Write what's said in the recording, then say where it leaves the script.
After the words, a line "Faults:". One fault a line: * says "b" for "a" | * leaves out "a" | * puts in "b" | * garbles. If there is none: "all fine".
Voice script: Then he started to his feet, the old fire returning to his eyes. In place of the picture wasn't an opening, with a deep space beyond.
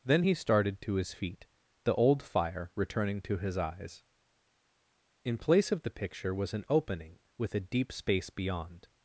Then he started to his feet, the old fire returning to his eyes. In place of the picture was an opening, with a deep space beyond.
Faults:
* says "was" for "wasn't"